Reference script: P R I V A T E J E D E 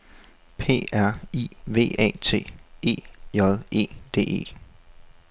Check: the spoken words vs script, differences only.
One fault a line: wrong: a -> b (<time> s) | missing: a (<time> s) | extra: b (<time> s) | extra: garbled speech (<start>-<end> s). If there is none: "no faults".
no faults